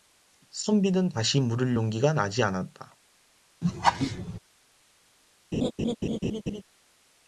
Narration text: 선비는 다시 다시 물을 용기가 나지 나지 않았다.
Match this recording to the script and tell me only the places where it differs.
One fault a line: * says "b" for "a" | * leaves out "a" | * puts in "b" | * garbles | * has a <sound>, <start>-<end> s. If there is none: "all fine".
* leaves out "다시"
* leaves out "나지"
* has a laugh, 3.6-4.4 s
* has a laugh, 5.5-6.6 s